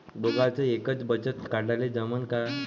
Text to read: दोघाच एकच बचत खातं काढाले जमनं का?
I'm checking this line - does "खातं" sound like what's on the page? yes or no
no